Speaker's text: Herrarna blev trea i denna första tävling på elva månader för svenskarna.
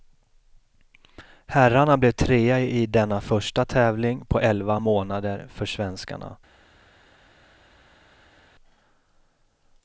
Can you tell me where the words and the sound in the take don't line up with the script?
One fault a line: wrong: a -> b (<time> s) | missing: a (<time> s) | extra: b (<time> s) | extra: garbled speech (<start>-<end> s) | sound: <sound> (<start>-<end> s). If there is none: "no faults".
no faults